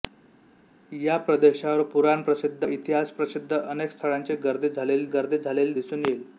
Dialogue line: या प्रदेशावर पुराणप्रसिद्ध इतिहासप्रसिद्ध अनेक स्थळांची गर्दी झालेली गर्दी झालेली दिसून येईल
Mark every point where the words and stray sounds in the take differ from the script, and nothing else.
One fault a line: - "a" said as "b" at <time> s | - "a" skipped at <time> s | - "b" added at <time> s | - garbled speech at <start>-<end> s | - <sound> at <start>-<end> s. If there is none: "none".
none